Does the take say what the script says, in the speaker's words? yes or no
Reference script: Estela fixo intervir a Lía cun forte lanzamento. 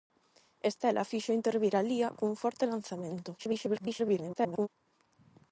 no